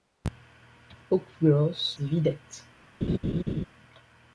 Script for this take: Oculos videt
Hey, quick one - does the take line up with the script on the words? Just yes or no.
yes